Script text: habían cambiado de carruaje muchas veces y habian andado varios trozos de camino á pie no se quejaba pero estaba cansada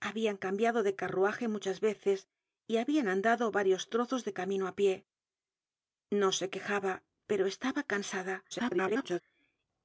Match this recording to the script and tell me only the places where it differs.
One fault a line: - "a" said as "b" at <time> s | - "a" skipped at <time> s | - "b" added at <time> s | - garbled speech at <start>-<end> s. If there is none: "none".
- garbled speech at 8.5-9.2 s